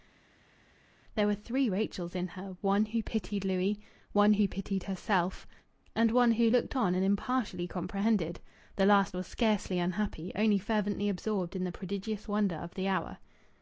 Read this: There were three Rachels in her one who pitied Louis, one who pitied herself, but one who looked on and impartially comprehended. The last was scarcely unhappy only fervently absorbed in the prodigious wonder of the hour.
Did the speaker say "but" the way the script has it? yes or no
no